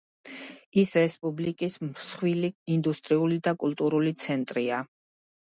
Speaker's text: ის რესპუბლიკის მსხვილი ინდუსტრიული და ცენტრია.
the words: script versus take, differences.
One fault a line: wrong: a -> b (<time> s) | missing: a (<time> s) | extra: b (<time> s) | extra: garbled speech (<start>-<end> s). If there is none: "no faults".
extra: კულტურული (3.7 s)